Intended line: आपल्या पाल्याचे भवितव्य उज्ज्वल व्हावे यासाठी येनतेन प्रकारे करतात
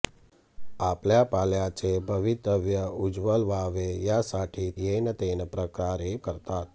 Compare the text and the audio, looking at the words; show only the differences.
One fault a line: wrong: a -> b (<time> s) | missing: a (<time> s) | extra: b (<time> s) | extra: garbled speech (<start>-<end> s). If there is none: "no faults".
no faults